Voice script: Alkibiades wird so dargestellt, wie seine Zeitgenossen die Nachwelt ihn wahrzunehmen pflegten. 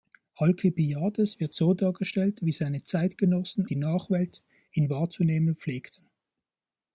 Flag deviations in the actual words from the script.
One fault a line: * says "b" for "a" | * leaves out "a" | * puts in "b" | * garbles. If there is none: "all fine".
all fine